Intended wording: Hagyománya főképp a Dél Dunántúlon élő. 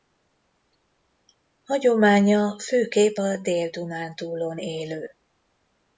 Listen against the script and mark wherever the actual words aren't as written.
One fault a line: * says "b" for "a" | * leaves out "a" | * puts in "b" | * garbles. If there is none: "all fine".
all fine